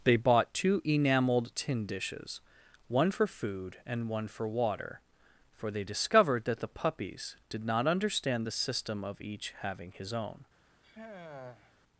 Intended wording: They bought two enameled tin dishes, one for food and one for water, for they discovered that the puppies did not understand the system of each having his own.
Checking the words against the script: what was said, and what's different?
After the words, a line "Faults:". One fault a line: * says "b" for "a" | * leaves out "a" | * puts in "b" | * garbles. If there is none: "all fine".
They bought two enameled tin dishes, one for food and one for water, for they discovered that the puppies did not understand the system of each having his own.
Faults:
all fine